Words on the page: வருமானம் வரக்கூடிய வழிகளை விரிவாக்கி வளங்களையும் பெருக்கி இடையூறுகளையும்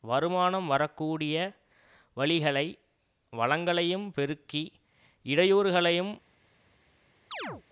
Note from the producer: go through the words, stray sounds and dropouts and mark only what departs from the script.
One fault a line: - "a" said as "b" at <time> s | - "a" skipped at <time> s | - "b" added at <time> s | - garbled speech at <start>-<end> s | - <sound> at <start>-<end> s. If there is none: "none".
- "விரிவாக்கி" skipped at 2.7 s
- chirp at 7.3-7.6 s